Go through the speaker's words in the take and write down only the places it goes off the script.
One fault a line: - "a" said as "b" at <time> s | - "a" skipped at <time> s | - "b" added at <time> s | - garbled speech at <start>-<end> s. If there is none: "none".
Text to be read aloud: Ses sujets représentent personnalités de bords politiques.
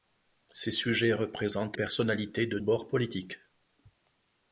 none